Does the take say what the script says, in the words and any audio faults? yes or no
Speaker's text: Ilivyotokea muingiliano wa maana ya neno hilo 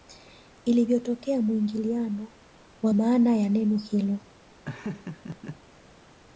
no